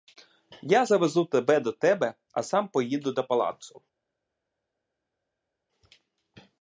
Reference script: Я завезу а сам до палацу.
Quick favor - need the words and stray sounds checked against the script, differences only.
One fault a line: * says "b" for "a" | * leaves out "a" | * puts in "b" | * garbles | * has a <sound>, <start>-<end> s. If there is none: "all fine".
* puts in "тебе до тебе"
* puts in "поїду"